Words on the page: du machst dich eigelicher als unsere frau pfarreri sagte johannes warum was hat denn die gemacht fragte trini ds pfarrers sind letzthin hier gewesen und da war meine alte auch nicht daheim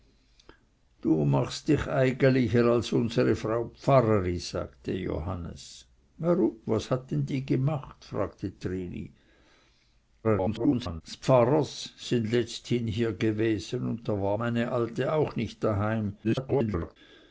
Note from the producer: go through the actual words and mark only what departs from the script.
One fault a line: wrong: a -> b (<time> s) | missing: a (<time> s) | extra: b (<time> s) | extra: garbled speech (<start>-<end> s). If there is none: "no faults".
extra: garbled speech (10.2-11.0 s)
extra: garbled speech (16.2-17.0 s)